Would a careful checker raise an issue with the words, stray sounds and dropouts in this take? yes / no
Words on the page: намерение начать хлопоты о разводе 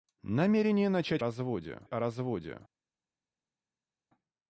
yes